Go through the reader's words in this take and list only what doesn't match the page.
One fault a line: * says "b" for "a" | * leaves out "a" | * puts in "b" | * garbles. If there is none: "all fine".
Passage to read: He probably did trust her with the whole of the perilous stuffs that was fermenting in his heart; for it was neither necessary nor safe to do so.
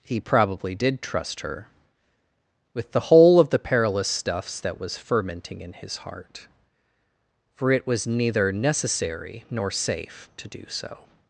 all fine